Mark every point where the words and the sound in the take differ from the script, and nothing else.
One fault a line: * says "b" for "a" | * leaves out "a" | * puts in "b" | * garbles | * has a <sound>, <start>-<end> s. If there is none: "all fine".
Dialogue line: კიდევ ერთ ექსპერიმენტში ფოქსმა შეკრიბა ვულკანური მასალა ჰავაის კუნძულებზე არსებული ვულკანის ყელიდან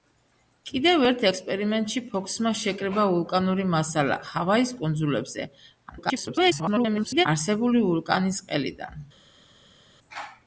* garbles